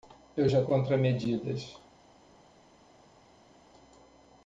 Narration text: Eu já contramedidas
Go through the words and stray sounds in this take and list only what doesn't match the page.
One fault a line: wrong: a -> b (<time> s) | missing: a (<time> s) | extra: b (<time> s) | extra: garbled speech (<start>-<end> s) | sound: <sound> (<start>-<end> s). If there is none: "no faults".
no faults